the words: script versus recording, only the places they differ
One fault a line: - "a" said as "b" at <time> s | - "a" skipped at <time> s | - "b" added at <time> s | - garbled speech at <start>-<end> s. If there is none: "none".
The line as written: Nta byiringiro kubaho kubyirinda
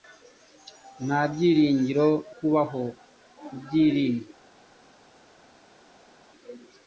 none